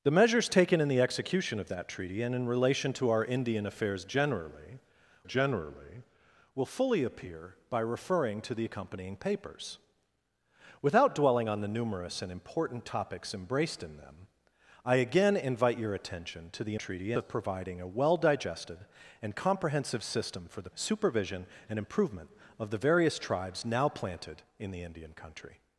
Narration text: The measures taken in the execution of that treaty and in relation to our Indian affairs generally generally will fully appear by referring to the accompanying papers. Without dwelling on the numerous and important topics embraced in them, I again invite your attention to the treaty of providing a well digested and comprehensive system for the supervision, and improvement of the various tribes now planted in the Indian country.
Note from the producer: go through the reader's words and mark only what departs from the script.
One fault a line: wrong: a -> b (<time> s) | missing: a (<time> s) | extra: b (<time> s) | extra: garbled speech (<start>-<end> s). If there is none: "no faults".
no faults